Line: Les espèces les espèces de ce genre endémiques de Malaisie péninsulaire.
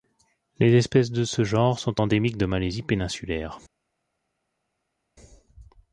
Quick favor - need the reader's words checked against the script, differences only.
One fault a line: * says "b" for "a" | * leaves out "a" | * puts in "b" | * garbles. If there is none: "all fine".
* leaves out "les espèces"
* puts in "sont"